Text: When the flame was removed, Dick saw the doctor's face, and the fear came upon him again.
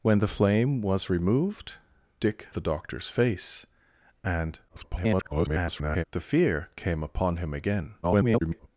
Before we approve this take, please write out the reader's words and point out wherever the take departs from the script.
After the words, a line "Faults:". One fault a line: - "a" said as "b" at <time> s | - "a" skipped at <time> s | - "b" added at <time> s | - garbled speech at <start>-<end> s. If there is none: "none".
When the flame was removed, Dick the doctor's face, and [garbled] the fear came upon him again. [garbled]
Faults:
- "saw" skipped at 2.5 s
- garbled speech at 4.7-6.0 s
- garbled speech at 8.0-8.7 s